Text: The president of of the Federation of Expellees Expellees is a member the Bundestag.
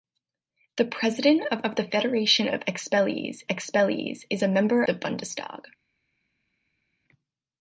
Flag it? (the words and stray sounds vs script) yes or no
no